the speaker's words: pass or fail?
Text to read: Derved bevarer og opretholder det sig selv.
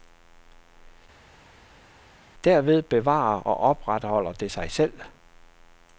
pass